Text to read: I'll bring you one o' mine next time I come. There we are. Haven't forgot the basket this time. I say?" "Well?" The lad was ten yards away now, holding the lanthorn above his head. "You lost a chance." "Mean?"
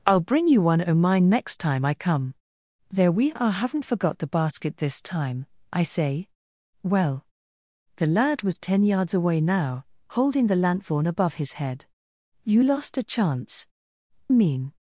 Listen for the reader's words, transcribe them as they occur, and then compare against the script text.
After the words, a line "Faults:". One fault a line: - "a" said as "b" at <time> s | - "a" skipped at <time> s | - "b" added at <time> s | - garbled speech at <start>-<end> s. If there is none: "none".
I'll bring you one o' mine next time I come. There we are. Haven't forgot the basket this time. I say?" "Well?" The lad was ten yards away now, holding the lanthorn above his head. "You lost a chance." "Mean?"
Faults:
none